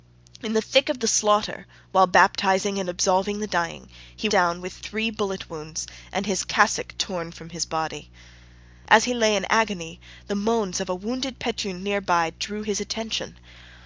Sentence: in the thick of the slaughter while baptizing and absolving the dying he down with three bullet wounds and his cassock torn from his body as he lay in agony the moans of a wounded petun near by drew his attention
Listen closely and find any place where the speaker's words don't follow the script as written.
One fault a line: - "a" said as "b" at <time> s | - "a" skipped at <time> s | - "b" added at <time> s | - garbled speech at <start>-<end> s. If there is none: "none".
none